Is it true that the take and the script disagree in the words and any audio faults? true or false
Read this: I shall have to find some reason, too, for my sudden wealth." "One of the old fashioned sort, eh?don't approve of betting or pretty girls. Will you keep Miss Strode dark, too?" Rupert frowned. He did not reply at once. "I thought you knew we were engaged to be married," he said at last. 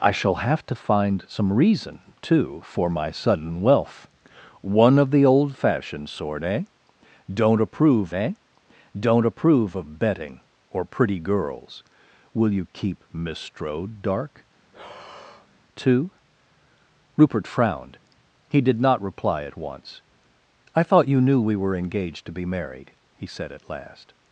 true